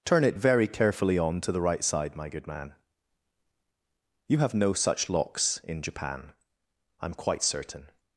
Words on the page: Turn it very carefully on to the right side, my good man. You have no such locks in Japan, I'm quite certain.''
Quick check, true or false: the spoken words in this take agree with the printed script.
true